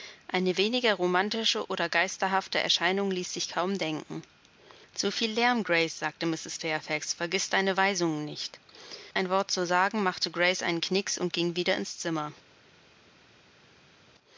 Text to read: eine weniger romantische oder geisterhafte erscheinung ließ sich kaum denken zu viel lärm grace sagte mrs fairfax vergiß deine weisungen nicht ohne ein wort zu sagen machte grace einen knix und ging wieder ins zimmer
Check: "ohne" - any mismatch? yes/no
yes